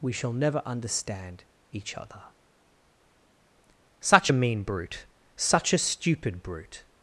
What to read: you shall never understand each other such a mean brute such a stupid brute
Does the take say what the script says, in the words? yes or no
no